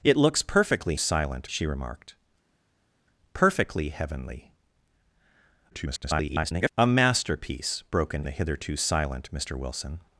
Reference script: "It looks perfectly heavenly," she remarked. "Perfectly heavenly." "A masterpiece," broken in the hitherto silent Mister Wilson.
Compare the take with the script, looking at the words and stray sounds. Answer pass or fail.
fail